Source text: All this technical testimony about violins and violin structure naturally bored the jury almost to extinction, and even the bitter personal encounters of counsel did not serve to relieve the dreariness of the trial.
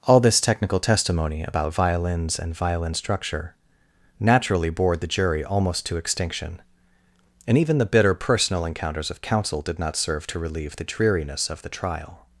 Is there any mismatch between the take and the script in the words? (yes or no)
no